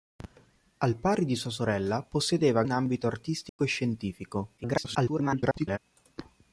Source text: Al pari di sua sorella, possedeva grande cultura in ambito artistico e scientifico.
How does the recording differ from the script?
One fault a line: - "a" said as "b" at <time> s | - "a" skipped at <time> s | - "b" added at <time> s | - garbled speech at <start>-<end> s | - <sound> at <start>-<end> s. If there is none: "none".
- "grande cultura" skipped at 2.6 s
- dropout at 3.5-3.6 s
- garbled speech at 4.6-5.8 s